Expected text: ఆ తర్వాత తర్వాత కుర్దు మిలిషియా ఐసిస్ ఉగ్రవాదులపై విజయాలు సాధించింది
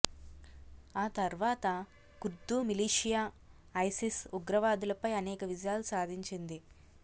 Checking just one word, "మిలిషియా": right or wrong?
right